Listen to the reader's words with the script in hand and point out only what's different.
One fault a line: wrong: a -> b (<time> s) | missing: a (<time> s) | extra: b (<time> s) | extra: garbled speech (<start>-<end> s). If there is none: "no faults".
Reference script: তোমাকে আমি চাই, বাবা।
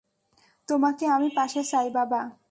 extra: পাশে (1.4 s)